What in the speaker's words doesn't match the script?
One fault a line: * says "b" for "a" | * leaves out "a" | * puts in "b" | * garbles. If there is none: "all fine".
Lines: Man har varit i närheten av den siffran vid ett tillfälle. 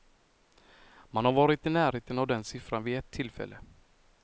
all fine